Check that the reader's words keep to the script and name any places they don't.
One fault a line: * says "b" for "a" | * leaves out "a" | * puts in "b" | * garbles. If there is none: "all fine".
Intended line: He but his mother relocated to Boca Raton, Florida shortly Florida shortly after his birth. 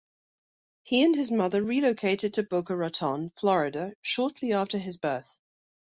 * says "and" for "but"
* leaves out "Florida shortly"